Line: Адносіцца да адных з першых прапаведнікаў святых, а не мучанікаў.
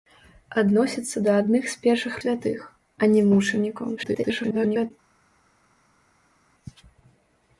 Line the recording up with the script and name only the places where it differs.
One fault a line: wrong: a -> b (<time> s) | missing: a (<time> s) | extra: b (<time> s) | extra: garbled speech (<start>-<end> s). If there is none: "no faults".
missing: прапаведнікаў (2.2 s)
extra: garbled speech (4.0-4.9 s)